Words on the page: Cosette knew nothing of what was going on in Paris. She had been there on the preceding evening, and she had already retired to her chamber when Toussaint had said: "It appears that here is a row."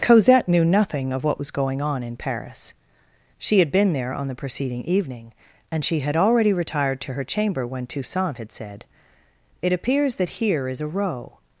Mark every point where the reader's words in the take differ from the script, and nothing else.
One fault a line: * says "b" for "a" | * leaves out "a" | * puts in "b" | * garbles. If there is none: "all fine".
all fine